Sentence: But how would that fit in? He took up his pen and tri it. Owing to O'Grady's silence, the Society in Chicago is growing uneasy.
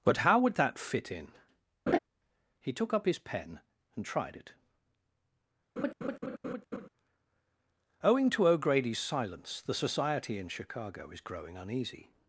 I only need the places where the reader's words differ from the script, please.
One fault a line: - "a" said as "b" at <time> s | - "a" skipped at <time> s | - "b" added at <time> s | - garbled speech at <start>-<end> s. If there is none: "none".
- "tri" said as "tried" at 4.0 s